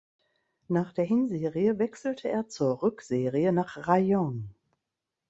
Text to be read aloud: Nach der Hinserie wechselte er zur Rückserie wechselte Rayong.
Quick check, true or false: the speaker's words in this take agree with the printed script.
false